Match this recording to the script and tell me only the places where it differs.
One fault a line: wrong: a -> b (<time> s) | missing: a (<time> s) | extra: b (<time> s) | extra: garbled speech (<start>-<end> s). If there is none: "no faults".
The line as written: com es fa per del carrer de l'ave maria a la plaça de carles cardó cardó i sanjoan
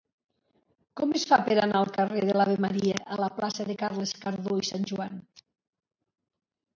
extra: anar (1.6 s)
missing: cardó (4.6 s)